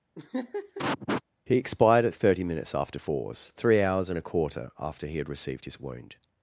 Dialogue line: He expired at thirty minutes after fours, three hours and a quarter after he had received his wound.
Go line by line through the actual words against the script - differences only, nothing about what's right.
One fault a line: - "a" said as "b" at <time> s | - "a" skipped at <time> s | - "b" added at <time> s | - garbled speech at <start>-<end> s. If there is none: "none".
none